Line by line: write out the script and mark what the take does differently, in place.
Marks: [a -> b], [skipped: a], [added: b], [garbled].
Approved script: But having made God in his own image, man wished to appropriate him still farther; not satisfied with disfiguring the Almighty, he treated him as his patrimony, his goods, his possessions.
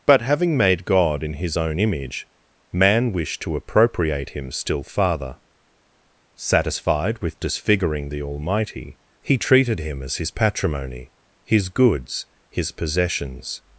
But having made God in his own image, man wished to appropriate him still farther; [skipped: not] satisfied with disfiguring the Almighty, he treated him as his patrimony, his goods, his possessions.